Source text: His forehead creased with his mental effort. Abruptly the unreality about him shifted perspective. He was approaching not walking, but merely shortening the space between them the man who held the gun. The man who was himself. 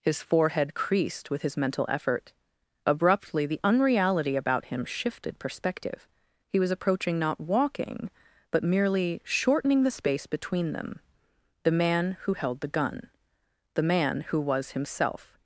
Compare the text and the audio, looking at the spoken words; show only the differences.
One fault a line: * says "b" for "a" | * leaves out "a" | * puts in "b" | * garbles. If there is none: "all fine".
all fine